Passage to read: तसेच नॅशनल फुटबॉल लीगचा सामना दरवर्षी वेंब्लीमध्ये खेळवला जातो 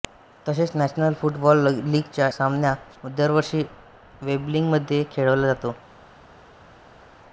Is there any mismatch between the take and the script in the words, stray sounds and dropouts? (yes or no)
no